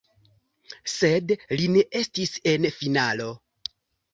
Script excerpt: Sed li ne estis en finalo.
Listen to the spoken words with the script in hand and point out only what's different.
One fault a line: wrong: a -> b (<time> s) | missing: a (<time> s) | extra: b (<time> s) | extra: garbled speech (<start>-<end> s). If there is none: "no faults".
no faults